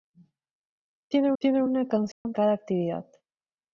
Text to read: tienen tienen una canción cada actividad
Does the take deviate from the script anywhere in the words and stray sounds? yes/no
yes